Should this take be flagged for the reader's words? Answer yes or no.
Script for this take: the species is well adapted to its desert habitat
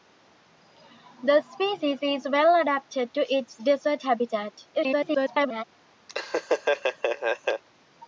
yes